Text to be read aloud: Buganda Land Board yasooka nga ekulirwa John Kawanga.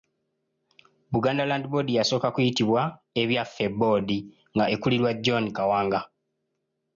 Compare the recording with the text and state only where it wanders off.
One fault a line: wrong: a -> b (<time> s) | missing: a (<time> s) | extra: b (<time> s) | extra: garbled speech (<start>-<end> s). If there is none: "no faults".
extra: kuyitibwa Ebyaffe Board (2.4 s)